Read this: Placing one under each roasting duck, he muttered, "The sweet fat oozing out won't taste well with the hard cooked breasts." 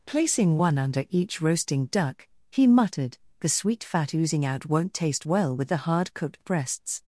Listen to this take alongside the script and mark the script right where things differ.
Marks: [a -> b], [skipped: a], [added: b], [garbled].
Placing one under each roasting duck, he muttered, "The sweet fat oozing out won't taste well with the hard cooked breasts."